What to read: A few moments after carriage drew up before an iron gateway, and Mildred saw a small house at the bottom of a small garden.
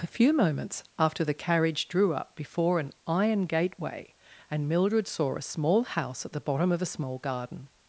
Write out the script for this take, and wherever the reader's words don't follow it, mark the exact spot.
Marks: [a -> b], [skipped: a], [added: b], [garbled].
A few moments after [added: the] carriage drew up before an iron gateway, and Mildred saw a small house at the bottom of a small garden.